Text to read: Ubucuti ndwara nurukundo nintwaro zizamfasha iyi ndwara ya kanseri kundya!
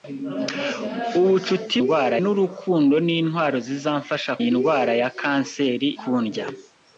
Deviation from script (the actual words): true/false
false